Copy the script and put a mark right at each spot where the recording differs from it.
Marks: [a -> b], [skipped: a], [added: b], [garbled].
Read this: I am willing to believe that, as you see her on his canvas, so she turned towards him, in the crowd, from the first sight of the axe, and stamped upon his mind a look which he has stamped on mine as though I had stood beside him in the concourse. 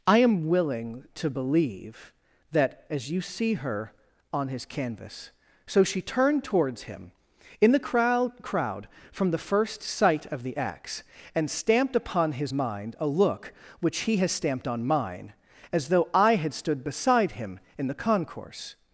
I am willing to believe that, as you see her on his canvas, so she turned towards him, in the crowd, [added: crowd] from the first sight of the axe, and stamped upon his mind a look which he has stamped on mine as though I had stood beside him in the concourse.